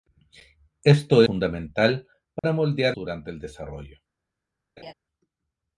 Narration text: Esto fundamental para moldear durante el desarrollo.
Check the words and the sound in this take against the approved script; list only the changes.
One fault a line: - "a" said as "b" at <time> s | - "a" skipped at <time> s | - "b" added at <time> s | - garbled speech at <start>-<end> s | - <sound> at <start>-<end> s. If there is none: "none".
- dropout at 2.4-2.4 s
- laugh at 4.8-4.9 s